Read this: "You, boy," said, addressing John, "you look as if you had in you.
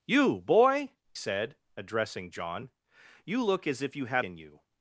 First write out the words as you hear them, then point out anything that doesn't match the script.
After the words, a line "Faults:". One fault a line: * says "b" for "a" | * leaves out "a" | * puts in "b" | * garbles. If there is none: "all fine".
"You, boy," said, addressing John, "you look as if you had in you.
Faults:
all fine